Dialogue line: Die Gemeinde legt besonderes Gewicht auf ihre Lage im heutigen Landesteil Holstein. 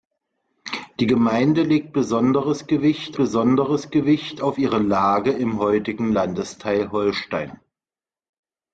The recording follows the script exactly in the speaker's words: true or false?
false